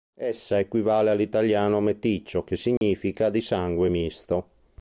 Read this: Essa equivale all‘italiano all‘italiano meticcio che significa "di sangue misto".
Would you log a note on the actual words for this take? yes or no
yes